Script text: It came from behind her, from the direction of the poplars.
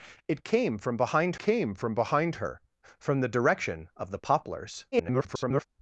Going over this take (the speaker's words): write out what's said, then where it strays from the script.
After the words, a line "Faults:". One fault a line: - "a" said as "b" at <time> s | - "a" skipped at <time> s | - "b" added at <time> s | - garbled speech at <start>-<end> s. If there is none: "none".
It came from behind came from behind her, from the direction of the poplars. [garbled]
Faults:
- "came from behind" added at 1.4 s
- garbled speech at 4.9-5.7 s